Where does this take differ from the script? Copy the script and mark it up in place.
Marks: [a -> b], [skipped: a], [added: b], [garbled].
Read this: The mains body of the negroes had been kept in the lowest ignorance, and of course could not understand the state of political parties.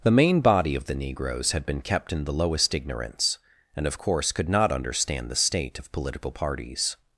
The [mains -> main] body of the negroes had been kept in the lowest ignorance, and of course could not understand the state of political parties.